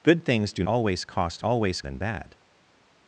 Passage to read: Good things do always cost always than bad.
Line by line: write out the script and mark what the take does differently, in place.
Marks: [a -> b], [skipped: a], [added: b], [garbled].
Good things do always cost always than bad.